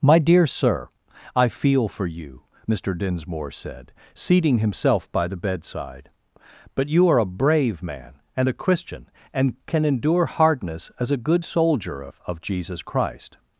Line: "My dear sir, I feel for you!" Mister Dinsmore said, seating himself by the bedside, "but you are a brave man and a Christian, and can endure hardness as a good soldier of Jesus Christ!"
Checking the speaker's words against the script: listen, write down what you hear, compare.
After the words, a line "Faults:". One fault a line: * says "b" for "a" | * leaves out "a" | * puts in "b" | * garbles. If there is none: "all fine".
"My dear sir, I feel for you!" Mister Dinsmore said, seating himself by the bedside, "but you are a brave man and a Christian, and can endure hardness as a good soldier of of Jesus Christ!"
Faults:
* puts in "of"